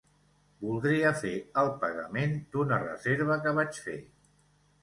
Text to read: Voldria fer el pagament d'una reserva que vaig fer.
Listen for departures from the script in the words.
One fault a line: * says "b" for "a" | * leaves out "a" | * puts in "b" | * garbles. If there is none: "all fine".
all fine